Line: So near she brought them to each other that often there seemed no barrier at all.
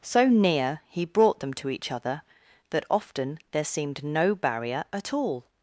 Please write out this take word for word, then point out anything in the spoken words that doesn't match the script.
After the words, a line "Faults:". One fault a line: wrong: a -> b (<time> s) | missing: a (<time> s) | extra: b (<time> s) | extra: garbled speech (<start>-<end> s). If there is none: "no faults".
So near he brought them to each other that often there seemed no barrier at all.
Faults:
wrong: she -> he (0.9 s)